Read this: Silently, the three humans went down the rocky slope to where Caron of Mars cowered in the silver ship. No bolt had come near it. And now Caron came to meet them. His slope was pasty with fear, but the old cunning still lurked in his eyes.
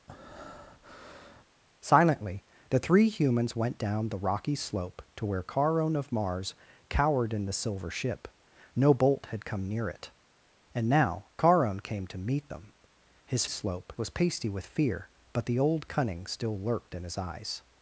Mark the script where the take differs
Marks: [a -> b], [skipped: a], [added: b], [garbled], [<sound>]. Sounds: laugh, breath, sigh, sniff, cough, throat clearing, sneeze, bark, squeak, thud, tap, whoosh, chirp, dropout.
[breath] Silently, the three humans went down the rocky slope to where Caron of Mars cowered in the silver ship. No bolt had come near it. And now Caron came to meet them. His slope was pasty with fear, but the old cunning still lurked in his eyes.